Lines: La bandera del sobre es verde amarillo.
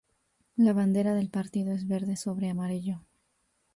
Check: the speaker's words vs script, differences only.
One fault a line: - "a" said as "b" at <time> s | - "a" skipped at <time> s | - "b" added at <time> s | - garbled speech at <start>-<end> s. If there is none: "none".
- "sobre" said as "partido" at 1.3 s
- "sobre" added at 2.1 s